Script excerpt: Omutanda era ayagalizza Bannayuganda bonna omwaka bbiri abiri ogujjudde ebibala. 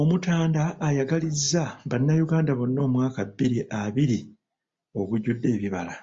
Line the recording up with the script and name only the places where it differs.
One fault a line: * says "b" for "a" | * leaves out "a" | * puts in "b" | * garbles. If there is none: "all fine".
* leaves out "era"